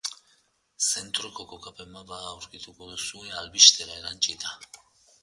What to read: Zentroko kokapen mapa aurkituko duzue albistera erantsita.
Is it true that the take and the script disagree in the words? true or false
false